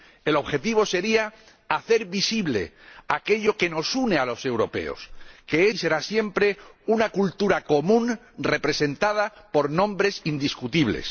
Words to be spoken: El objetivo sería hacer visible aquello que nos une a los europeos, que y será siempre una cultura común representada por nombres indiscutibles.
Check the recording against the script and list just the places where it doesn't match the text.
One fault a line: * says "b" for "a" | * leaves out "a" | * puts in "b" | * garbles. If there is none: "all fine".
all fine